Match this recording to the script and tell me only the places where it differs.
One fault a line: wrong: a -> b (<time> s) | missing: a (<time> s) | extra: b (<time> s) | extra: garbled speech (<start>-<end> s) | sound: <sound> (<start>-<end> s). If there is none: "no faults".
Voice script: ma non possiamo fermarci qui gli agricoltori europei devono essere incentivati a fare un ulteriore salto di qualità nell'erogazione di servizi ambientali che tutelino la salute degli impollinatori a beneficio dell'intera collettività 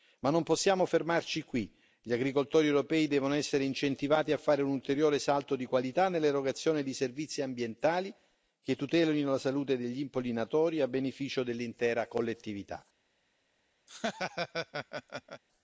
sound: laugh (13.9-15.4 s)